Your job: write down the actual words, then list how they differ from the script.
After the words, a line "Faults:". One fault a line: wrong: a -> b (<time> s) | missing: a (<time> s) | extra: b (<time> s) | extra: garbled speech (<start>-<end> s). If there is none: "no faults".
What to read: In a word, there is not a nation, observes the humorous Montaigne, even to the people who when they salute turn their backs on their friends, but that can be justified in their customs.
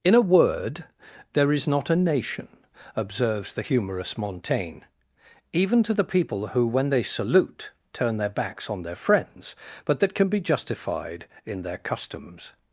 In a word, there is not a nation, observes the humorous Montaigne, even to the people who when they salute turn their backs on their friends, but that can be justified in their customs.
Faults:
no faults